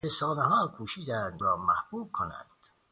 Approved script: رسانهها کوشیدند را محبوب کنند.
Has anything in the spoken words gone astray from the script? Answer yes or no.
no